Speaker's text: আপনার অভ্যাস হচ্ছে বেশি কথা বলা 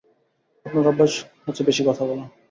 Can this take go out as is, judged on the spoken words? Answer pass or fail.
pass